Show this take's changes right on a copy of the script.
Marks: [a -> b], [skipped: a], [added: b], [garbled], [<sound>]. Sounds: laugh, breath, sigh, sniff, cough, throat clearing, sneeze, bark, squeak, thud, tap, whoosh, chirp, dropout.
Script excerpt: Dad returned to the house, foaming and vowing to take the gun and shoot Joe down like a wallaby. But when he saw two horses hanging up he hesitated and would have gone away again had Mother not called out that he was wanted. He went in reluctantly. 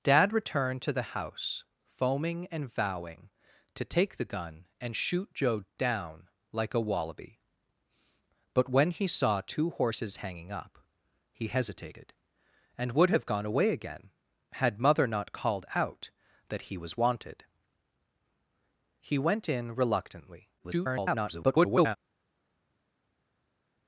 Dad returned to the house, foaming and vowing to take the gun and shoot Joe down like a wallaby. But when he saw two horses hanging up he hesitated and would have gone away again had Mother not called out that he was wanted. He went in reluctantly. [garbled]